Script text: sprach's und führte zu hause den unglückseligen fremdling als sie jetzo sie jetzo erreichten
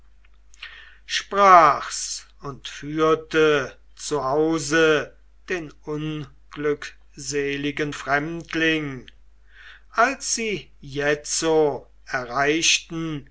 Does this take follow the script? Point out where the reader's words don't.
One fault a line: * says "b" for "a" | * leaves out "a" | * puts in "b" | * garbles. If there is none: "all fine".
* leaves out "sie jetzo"